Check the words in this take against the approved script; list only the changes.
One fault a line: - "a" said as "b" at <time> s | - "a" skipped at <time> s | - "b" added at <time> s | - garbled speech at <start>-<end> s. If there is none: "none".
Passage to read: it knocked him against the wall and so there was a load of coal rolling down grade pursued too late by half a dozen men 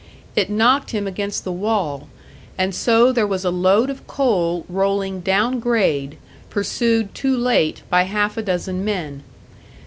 none